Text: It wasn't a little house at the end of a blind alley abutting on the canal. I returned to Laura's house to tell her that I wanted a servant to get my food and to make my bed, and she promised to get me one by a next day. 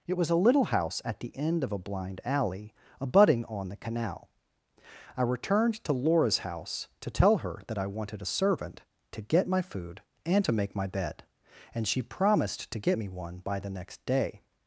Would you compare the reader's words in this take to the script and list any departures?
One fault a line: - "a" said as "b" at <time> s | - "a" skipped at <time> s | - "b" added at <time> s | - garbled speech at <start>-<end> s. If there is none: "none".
- "wasn't" said as "was" at 0.2 s
- "a" said as "the" at 13.6 s